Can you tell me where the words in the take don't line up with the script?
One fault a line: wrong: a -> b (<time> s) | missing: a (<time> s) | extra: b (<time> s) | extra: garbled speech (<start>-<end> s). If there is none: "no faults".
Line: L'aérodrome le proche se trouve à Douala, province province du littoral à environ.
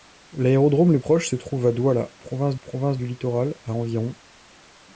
no faults